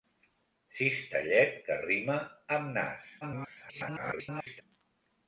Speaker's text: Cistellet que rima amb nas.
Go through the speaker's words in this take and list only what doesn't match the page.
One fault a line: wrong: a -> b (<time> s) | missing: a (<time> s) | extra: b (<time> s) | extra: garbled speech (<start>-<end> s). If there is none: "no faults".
extra: garbled speech (3.2-4.6 s)